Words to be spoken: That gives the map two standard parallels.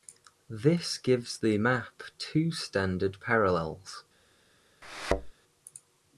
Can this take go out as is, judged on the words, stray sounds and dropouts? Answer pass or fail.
fail